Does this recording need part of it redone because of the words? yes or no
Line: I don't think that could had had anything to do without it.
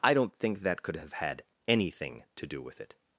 yes